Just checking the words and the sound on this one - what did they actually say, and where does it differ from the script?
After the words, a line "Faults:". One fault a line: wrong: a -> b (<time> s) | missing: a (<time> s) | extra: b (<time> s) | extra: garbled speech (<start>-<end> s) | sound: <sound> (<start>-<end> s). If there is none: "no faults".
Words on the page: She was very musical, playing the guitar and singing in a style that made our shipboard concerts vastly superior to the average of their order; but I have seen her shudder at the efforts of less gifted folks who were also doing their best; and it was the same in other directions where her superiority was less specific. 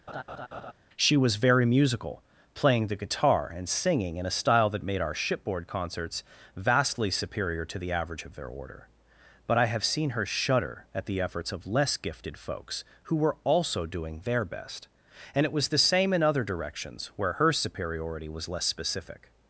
She was very musical, playing the guitar and singing in a style that made our shipboard concerts vastly superior to the average of their order; but I have seen her shudder at the efforts of less gifted folks who were also doing their best; and it was the same in other directions where her superiority was less specific.
Faults:
sound: laugh (0.1-0.7 s)